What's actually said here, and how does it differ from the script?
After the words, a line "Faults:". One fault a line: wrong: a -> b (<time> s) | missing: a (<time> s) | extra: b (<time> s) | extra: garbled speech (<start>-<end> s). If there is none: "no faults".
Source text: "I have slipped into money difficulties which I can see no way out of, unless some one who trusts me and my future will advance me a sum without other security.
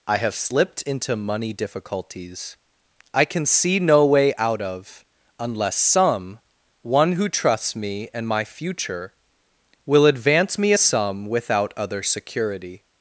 "I have slipped into money difficulties I can see no way out of, unless some one who trusts me and my future will advance me a sum without other security.
Faults:
missing: which (2.6 s)